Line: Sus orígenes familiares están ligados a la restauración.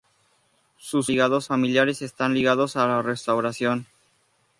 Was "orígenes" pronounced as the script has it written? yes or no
no